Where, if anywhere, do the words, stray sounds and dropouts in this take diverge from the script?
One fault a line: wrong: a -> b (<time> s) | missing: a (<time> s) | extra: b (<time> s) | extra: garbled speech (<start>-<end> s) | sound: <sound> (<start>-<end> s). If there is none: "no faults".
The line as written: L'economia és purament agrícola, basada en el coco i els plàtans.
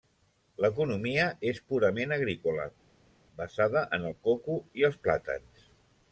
no faults